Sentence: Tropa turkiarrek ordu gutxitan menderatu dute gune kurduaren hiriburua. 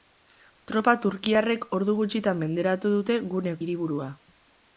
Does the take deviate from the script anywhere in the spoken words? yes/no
yes